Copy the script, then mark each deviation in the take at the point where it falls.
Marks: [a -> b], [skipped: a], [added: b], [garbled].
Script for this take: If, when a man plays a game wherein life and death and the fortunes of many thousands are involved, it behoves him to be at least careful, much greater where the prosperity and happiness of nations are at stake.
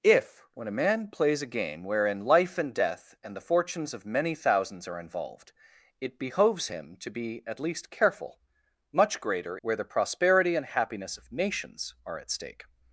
If, when a man plays a game wherein life and death and the fortunes of many thousands are involved, it behoves him to be at least careful, much greater where the prosperity and happiness of nations are at stake.